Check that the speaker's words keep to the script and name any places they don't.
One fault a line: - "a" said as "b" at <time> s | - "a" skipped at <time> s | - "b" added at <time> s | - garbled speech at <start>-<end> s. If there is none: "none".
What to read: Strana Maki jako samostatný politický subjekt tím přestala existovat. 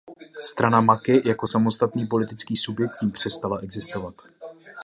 none